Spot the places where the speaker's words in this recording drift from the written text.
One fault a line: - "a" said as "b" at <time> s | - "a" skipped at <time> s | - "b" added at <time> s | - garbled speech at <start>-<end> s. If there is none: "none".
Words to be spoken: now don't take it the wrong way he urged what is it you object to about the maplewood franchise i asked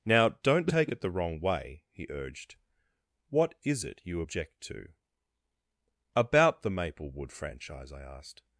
none